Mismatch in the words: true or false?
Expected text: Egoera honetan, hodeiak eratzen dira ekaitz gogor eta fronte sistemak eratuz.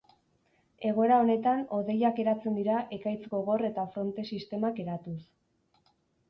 false